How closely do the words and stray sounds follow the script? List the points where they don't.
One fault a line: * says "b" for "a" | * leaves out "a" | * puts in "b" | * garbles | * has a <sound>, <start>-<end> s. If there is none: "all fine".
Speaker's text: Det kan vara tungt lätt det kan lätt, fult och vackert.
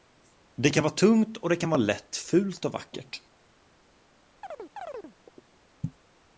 * says "och" for "lätt"
* puts in "vara"
* has a chirp, 4.4-5.6 s